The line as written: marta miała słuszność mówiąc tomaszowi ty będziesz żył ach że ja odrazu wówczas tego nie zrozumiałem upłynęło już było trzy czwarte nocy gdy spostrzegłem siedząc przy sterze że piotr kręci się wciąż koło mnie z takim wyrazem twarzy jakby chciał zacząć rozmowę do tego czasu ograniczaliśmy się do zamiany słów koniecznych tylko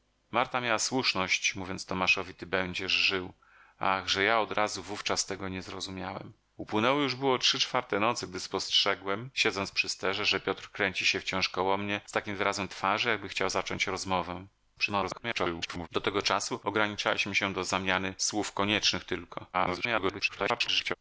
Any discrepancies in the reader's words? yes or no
yes